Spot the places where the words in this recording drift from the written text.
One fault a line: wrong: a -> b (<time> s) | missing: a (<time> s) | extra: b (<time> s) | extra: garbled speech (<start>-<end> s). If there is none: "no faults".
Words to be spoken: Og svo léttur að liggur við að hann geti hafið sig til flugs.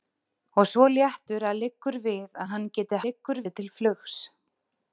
wrong: hafið -> liggur (3.1 s)